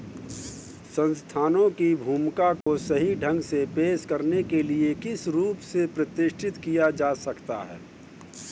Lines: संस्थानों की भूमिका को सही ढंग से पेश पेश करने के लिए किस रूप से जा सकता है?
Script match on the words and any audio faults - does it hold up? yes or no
no